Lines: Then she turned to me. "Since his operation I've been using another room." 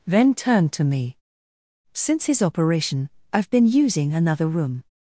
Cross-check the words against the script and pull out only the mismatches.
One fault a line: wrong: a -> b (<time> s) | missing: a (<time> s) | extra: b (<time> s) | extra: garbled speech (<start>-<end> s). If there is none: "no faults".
missing: she (0.3 s)